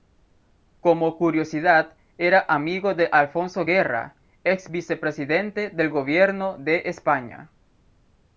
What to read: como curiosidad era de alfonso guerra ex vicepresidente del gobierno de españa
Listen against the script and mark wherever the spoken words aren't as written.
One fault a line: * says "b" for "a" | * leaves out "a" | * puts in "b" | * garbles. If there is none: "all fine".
* puts in "amigo"